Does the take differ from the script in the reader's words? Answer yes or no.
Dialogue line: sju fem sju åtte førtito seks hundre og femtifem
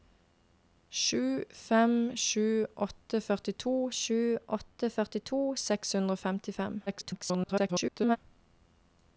yes